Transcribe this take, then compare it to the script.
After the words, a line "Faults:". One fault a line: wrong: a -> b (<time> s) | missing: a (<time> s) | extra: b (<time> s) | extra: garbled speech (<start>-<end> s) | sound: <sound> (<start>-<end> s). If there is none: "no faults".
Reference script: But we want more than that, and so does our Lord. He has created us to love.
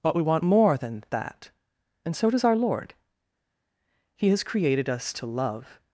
But we want more than that, and so does our Lord. He has created us to love.
Faults:
no faults